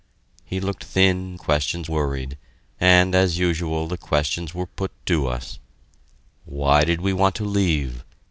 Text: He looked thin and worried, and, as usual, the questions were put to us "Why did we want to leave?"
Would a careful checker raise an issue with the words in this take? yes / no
yes